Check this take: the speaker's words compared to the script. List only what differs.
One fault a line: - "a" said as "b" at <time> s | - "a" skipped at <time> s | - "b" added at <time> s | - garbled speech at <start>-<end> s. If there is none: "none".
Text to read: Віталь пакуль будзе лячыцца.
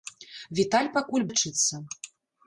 - "будзе" skipped at 1.3 s